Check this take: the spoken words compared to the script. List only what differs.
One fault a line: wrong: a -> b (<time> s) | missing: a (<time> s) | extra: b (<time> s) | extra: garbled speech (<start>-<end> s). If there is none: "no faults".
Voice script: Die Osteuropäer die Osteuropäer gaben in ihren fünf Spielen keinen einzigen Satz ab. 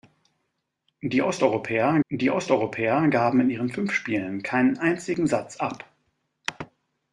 no faults